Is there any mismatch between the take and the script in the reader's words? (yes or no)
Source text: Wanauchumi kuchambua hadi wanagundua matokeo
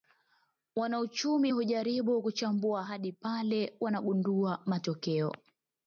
yes